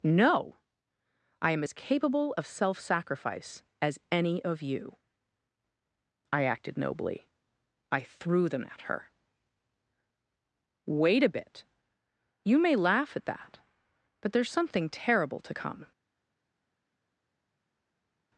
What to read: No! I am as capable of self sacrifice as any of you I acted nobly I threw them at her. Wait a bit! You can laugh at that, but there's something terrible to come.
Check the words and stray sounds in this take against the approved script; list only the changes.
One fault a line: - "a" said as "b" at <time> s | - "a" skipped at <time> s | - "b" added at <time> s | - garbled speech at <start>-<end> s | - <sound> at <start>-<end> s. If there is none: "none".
- "can" said as "may" at 12.6 s